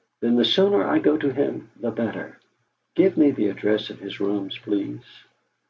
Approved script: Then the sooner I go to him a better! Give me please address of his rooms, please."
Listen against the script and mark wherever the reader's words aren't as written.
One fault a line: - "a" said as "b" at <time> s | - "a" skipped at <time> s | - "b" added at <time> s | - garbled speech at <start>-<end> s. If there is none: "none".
- "a" said as "the" at 1.7 s
- "please" said as "the" at 3.3 s